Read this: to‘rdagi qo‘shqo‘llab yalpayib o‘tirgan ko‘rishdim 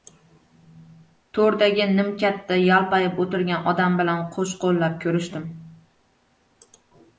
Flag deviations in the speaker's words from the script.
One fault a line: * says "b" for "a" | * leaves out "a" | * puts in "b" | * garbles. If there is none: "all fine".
* says "nimkatda" for "qo‘shqo‘llab"
* puts in "odam bilan qo‘shqo‘llab"